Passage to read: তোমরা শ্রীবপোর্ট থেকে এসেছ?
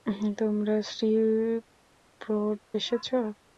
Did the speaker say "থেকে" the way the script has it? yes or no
no